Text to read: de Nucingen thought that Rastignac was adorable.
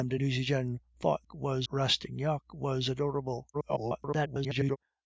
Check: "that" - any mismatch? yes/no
yes